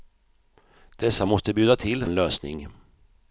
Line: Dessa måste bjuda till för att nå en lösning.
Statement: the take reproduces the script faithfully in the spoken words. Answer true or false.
false